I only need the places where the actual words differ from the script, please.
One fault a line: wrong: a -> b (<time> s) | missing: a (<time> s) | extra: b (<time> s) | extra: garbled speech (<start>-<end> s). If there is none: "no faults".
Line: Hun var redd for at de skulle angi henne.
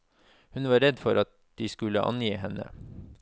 no faults